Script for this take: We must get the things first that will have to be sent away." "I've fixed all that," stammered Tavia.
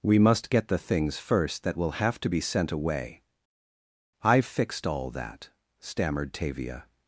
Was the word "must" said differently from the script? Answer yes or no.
no